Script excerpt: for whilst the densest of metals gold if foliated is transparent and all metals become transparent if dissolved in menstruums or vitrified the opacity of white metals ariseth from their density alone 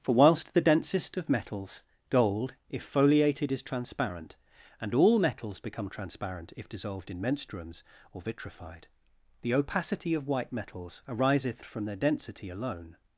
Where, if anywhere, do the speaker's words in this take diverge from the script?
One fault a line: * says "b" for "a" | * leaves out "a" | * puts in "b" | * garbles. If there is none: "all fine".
all fine